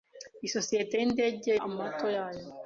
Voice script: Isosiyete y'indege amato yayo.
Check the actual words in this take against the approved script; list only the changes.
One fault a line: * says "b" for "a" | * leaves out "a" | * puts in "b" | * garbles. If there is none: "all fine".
all fine